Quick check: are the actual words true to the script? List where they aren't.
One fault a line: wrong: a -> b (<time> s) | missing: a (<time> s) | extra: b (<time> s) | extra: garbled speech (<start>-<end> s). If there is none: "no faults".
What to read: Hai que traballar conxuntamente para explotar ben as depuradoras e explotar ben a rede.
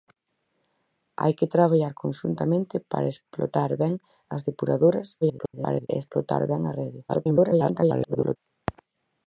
extra: garbled speech (5.2-5.9 s)
extra: garbled speech (7.1-8.4 s)